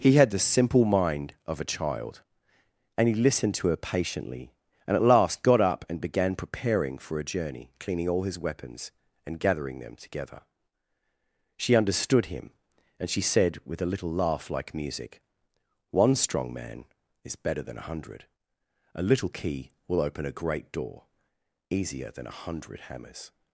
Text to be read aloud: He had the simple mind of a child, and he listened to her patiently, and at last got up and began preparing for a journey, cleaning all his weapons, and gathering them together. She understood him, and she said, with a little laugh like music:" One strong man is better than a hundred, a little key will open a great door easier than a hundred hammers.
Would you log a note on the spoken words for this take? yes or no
no